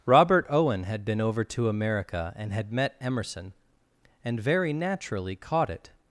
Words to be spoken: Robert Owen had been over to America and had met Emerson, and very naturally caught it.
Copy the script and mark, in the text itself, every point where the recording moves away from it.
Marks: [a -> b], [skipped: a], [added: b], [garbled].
Robert Owen had been over to America and had met Emerson, and very naturally caught it.